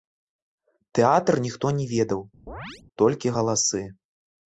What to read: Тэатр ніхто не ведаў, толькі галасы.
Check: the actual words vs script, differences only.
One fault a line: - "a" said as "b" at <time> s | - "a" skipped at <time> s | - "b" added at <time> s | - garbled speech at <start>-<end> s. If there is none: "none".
none